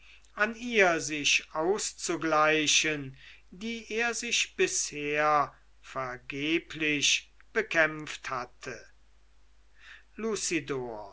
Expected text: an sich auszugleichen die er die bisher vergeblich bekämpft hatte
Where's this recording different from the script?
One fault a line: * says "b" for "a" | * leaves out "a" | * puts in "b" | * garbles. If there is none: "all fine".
* puts in "ihr"
* says "sich" for "die"